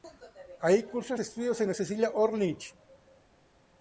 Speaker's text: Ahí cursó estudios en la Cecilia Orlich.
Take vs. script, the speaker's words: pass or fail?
pass